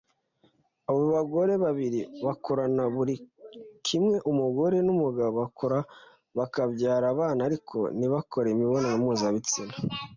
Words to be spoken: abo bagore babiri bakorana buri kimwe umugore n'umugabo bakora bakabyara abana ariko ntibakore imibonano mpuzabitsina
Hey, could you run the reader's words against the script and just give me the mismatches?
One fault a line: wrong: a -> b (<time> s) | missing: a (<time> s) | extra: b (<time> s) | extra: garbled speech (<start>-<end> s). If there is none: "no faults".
no faults